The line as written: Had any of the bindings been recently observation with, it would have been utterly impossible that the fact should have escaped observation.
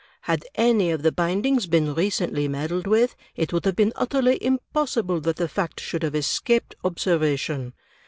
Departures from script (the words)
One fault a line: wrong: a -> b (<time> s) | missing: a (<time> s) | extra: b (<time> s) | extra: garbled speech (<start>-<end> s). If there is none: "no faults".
wrong: observation -> meddled (2.5 s)